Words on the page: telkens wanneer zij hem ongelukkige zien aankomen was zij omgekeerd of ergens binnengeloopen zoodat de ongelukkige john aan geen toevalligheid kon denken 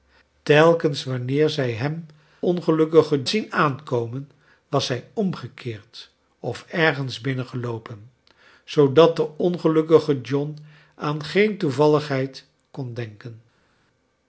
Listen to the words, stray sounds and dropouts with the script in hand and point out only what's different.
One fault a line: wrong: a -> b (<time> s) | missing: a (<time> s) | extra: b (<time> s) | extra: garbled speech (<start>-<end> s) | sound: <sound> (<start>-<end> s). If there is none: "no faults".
no faults